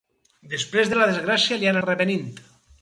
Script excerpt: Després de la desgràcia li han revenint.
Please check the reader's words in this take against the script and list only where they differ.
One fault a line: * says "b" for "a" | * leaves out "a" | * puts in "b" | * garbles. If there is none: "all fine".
all fine